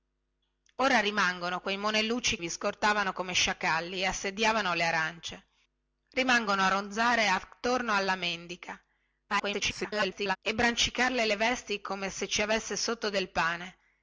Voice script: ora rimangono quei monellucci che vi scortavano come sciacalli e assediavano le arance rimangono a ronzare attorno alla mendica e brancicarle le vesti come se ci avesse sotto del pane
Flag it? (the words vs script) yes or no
yes